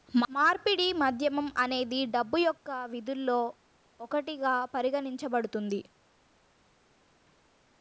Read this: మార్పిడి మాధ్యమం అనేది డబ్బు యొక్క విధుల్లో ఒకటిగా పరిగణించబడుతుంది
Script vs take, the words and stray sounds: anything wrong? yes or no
no